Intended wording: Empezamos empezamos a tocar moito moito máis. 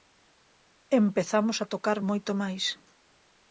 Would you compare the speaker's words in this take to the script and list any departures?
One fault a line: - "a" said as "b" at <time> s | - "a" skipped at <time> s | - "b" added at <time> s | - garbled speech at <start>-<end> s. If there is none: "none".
- "empezamos" skipped at 1.6 s
- "moito" skipped at 2.3 s